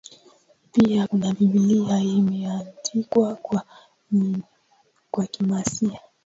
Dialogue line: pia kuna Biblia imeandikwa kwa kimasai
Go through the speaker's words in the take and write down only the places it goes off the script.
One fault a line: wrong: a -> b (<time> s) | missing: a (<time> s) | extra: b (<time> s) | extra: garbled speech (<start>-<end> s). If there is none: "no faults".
no faults